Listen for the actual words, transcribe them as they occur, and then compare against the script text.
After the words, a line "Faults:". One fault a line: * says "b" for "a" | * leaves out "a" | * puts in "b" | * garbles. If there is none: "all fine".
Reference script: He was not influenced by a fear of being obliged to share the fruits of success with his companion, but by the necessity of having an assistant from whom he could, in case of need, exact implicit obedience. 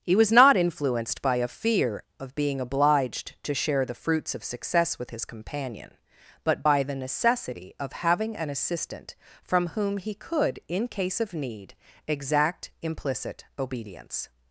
He was not influenced by a fear of being obliged to share the fruits of success with his companion, but by the necessity of having an assistant from whom he could, in case of need, exact implicit obedience.
Faults:
all fine